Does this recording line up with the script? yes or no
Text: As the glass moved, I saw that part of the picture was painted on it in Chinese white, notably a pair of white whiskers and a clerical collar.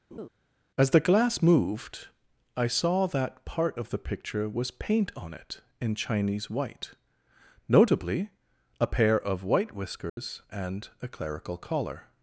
no